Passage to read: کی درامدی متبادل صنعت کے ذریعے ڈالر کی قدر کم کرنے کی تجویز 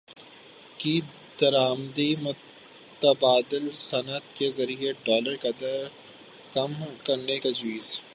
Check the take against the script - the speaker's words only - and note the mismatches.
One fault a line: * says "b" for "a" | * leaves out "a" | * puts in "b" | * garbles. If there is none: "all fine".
* leaves out "کی"
* leaves out "کی"